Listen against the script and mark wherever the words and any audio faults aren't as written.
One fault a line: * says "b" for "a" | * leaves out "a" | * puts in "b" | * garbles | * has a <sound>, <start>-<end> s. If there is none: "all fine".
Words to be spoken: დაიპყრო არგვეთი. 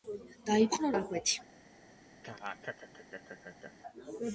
* has a laugh, 2.2-3.7 s